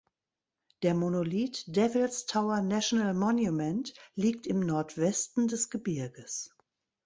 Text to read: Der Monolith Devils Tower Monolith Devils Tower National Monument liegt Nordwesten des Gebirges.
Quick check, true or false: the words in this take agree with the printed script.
false